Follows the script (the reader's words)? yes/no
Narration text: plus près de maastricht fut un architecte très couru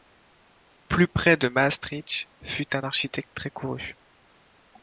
yes